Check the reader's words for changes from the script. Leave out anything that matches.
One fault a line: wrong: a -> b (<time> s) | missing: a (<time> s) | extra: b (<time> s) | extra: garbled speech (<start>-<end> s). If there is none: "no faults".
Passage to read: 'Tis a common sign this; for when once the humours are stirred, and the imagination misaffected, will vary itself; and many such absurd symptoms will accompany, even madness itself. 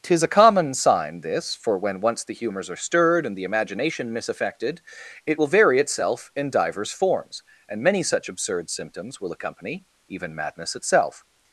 extra: it (5.3 s)
extra: in divers forms (6.4 s)